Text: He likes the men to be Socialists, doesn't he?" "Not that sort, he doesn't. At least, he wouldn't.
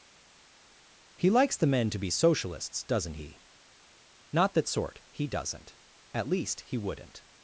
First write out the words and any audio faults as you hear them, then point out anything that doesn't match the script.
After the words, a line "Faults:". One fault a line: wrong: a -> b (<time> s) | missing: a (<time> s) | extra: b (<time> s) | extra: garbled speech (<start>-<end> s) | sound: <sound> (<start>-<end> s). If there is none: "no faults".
He likes the men to be Socialists, doesn't he?" "Not that sort, he doesn't. At least, he wouldn't.
Faults:
no faults